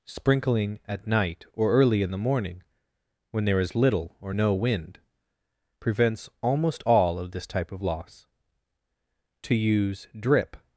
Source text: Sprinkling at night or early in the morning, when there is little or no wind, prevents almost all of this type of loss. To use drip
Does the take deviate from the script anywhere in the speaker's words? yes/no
no